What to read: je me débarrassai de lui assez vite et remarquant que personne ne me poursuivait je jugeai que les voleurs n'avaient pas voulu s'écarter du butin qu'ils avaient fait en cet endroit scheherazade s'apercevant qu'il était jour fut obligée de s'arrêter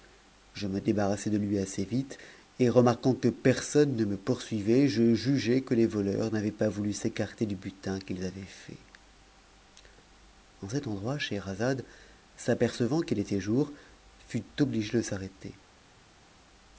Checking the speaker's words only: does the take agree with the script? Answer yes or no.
yes